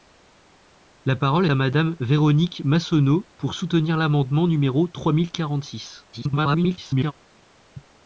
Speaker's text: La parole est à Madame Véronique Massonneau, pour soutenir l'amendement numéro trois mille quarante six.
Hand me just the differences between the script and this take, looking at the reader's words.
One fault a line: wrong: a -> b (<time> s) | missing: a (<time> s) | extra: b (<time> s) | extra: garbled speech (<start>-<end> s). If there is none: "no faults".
missing: est (1.4 s)
extra: garbled speech (6.1-7.1 s)